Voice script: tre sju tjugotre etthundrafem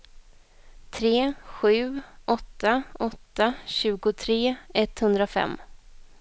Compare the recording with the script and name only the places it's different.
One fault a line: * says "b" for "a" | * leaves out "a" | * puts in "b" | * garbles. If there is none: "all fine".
* puts in "åtta åtta"